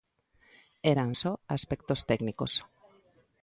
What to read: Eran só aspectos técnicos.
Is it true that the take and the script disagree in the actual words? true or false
false